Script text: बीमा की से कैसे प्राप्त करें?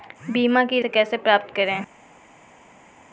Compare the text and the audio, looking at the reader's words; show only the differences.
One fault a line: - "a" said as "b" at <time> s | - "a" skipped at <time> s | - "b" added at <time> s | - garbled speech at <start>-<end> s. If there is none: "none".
none